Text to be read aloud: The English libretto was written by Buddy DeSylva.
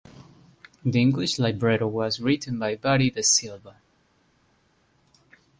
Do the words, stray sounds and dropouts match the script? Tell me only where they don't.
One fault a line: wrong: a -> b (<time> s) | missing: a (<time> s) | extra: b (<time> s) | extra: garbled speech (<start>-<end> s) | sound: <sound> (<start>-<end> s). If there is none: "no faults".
no faults